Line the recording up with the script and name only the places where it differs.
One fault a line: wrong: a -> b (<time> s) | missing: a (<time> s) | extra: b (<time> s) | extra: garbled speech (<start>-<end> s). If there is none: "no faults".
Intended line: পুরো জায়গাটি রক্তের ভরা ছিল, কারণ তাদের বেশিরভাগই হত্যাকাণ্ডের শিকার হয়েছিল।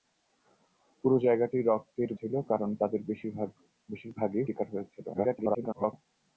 missing: ভরা (2.1 s)
missing: হত্যাকাণ্ডের (4.4 s)
extra: garbled speech (5.1-5.9 s)